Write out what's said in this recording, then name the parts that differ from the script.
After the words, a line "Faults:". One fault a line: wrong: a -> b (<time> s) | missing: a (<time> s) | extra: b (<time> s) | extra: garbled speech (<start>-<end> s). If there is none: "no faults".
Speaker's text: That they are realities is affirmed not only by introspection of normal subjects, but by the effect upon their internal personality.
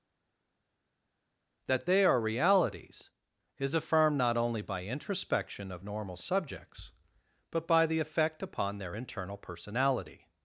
That they are realities is affirmed not only by introspection of normal subjects, but by the effect upon their internal personality.
Faults:
no faults